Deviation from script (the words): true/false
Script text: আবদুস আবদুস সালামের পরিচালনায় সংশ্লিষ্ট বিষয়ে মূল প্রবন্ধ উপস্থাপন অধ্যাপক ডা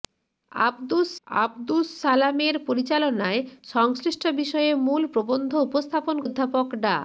false